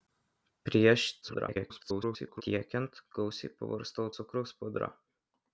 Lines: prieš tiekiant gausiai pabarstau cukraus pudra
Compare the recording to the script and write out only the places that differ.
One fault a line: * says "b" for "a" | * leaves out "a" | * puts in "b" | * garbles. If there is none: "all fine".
* garbles